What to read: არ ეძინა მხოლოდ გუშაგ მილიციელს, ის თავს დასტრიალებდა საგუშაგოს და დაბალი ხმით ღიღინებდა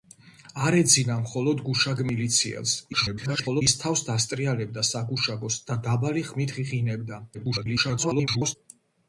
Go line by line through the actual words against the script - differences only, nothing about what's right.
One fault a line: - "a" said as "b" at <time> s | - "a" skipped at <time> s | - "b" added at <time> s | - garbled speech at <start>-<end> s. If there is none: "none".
- garbled speech at 2.9-3.6 s
- garbled speech at 7.3-8.6 s